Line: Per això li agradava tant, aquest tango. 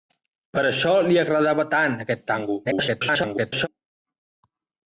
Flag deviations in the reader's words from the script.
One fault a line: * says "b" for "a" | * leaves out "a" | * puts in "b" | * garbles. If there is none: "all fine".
* garbles